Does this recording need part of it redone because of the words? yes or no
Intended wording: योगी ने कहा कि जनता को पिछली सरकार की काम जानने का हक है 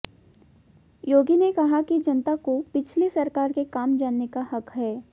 yes